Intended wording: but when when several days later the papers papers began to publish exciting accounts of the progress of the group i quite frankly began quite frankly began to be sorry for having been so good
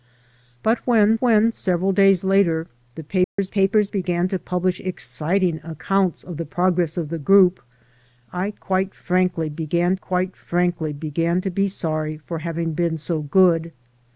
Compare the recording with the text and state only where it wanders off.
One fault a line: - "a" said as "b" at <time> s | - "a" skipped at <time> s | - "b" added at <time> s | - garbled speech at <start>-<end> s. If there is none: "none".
none